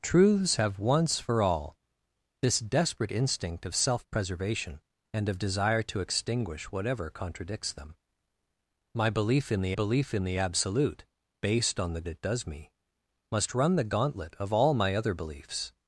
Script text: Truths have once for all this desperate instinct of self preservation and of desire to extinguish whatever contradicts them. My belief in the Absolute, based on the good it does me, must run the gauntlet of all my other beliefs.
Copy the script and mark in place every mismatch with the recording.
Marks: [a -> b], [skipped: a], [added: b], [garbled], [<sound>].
Truths have once for all this desperate instinct of self preservation and of desire to extinguish whatever contradicts them. My belief in the [added: belief in the] Absolute, based on the [skipped: good] it does me, must run the gauntlet of all my other beliefs.